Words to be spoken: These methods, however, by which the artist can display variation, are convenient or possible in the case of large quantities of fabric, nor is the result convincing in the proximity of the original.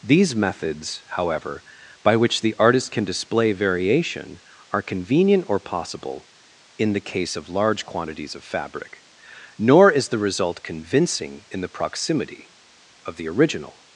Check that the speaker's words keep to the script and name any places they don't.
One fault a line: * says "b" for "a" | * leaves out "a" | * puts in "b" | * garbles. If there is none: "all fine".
all fine